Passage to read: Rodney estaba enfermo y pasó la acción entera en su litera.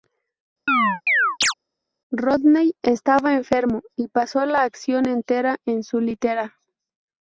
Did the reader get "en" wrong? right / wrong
right